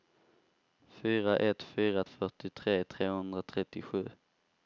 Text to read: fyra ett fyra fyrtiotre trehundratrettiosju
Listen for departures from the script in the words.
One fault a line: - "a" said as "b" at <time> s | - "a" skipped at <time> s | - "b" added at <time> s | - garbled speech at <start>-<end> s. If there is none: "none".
none